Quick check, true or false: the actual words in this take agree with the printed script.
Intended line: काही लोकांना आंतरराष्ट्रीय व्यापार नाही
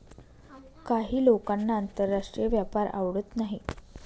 false